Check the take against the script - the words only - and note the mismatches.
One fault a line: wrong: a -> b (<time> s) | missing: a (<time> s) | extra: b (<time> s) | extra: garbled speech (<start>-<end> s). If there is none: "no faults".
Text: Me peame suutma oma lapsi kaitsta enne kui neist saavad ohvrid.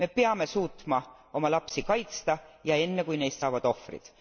extra: ja (2.6 s)